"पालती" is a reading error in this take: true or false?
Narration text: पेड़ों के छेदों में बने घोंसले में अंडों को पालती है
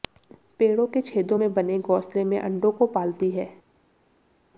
false